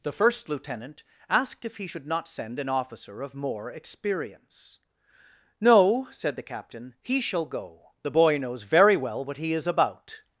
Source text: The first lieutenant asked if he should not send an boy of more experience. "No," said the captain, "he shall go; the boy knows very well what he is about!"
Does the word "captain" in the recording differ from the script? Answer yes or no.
no